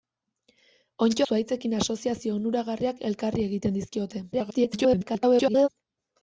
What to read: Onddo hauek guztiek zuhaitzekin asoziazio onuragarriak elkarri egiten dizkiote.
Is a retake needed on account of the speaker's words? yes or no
yes